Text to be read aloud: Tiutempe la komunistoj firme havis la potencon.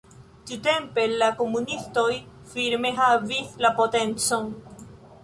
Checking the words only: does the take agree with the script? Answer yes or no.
yes